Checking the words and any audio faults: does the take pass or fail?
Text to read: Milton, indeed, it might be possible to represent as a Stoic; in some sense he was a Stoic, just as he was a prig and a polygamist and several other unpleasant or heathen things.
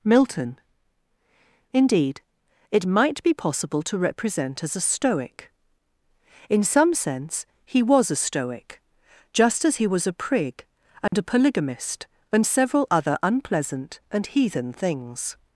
fail